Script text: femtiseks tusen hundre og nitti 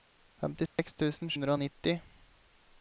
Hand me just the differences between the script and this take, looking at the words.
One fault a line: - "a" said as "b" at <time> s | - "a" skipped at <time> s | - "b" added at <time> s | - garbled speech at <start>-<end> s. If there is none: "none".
none